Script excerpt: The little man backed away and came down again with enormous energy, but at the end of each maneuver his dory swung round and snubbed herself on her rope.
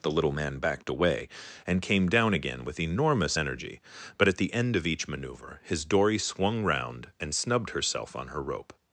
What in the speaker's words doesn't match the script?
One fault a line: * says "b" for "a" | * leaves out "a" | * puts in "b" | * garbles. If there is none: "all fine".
all fine